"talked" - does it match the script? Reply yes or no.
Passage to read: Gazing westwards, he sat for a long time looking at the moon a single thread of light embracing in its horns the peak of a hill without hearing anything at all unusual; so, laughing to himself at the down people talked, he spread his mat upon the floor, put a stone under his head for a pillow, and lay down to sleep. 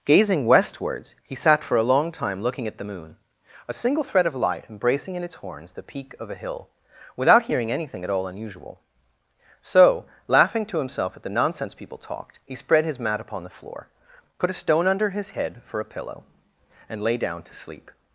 yes